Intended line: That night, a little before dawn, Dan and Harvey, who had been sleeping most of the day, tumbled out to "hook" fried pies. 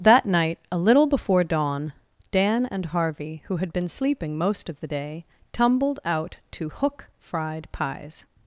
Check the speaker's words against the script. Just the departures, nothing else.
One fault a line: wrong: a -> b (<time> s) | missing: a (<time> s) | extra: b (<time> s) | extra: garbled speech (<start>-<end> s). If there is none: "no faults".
no faults